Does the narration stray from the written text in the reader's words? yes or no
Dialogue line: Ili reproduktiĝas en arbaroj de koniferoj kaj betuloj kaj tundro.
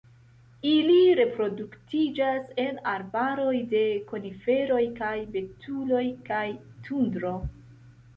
no